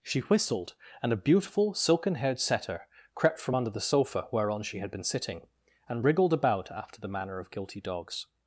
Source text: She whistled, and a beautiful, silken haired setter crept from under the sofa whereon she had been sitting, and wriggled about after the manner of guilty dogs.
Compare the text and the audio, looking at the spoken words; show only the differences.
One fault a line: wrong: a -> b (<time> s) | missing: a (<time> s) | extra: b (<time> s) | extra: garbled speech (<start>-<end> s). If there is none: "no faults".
no faults